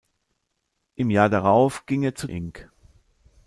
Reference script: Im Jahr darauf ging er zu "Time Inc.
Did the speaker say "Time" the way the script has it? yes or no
no